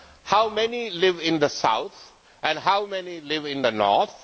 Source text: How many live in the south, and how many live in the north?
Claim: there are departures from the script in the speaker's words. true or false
false